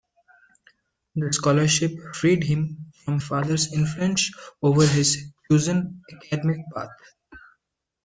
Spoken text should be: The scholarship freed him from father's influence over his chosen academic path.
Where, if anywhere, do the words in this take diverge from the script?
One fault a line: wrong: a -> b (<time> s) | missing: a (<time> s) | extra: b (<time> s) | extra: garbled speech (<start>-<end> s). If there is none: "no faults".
no faults